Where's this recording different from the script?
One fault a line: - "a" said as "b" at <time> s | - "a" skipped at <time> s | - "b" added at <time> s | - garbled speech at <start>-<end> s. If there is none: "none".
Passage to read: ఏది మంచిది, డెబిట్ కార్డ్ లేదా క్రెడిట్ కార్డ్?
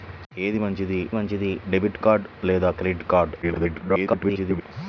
- "మంచిది" added at 1.1 s
- garbled speech at 3.4-4.6 s